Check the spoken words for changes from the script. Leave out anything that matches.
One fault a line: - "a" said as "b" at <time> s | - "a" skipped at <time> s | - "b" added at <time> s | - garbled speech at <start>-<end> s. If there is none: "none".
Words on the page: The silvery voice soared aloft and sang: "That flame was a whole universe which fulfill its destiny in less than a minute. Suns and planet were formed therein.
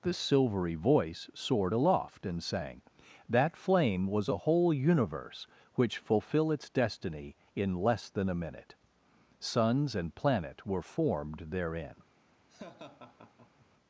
none